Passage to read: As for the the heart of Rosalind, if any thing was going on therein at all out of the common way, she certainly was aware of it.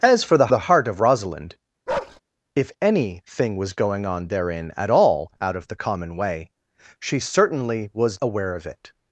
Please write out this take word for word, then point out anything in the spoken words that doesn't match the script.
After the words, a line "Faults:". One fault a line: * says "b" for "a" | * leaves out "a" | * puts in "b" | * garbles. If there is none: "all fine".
As for the the heart of Rosalind, if any thing was going on therein at all out of the common way, she certainly was aware of it.
Faults:
all fine